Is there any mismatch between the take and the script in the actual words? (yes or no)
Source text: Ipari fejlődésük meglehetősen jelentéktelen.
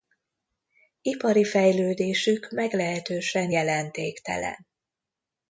no